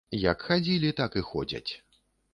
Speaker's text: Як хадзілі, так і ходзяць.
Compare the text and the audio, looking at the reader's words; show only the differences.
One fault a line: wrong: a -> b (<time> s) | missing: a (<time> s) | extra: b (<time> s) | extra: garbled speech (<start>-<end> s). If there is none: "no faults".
no faults